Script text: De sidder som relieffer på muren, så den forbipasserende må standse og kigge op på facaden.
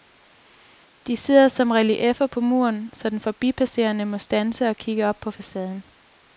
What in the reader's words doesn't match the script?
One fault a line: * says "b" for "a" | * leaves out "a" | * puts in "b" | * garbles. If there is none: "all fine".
all fine